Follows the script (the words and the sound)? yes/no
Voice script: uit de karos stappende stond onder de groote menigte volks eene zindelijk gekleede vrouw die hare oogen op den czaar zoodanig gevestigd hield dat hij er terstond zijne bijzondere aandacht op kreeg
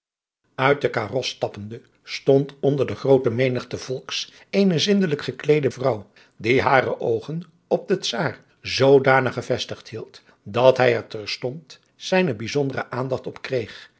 yes